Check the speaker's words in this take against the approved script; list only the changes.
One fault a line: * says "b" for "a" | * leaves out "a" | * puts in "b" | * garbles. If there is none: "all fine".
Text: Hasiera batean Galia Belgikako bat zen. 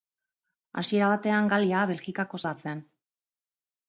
all fine